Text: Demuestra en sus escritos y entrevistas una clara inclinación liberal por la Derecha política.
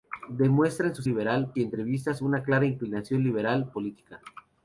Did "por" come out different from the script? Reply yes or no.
yes